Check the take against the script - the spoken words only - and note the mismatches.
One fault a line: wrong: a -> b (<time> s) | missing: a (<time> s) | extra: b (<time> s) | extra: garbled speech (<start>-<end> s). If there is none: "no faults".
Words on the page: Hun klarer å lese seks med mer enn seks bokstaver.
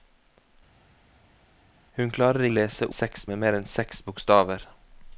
no faults